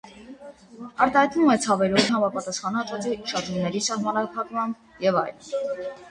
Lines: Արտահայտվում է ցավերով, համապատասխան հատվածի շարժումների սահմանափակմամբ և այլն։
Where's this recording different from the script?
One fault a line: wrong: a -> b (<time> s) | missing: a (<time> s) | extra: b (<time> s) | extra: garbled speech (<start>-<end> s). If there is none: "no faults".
no faults